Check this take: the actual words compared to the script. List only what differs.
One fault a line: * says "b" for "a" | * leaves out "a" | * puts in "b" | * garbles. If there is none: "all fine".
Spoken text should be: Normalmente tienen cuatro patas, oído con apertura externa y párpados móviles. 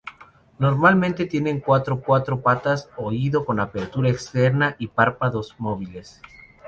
* puts in "cuatro"